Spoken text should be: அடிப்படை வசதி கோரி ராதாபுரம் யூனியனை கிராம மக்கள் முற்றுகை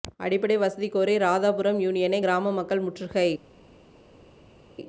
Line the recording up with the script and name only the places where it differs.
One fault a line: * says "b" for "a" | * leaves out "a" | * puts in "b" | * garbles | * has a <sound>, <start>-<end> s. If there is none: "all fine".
all fine